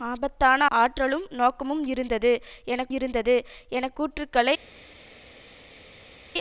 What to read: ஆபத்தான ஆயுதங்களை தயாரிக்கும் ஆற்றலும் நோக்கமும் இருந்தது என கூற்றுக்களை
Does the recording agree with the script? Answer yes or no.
no